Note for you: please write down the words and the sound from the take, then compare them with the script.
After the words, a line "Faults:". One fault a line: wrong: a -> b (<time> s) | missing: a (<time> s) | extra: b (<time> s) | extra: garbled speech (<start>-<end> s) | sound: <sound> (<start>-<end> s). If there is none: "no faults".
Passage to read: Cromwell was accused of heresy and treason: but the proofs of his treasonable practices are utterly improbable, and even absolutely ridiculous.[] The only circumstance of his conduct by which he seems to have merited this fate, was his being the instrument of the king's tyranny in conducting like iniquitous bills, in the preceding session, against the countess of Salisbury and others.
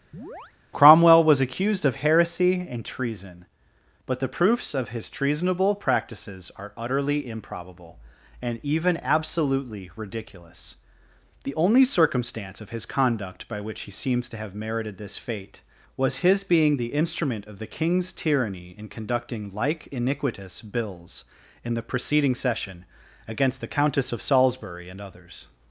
Cromwell was accused of heresy and treason: but the proofs of his treasonable practices are utterly improbable, and even absolutely ridiculous.[] The only circumstance of his conduct by which he seems to have merited this fate, was his being the instrument of the king's tyranny in conducting like iniquitous bills, in the preceding session, against the countess of Salisbury and others.
Faults:
sound: chirp (0.1-0.5 s)